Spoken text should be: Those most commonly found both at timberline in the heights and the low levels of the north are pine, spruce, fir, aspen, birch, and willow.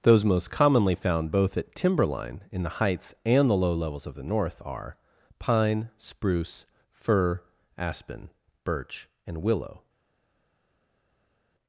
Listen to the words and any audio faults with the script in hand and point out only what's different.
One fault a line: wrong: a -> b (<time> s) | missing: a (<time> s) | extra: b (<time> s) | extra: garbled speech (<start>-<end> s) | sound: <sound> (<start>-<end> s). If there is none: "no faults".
no faults